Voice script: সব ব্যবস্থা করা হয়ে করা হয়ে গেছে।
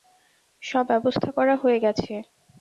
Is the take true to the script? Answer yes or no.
no